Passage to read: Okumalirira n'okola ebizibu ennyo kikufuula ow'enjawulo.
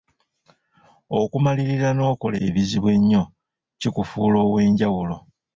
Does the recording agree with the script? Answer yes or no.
yes